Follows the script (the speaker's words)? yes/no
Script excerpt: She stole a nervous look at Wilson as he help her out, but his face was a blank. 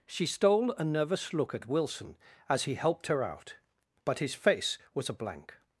no